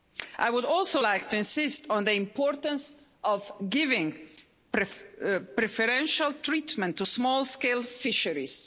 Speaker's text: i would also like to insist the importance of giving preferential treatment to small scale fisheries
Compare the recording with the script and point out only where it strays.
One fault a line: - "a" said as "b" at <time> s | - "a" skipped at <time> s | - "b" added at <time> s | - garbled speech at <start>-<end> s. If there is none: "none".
- "on" added at 1.9 s